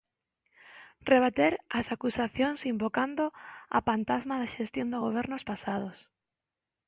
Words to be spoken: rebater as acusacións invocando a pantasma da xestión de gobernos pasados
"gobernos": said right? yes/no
yes